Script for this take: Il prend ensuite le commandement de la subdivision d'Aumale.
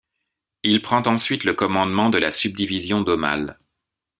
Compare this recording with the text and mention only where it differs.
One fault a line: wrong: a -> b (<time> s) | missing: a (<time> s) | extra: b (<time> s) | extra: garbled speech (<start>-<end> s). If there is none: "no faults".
no faults